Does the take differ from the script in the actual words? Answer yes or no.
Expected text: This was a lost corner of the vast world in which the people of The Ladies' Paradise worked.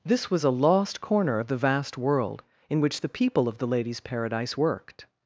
no